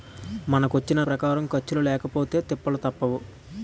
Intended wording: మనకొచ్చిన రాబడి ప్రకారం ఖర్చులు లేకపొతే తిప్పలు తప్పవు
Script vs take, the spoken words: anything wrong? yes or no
yes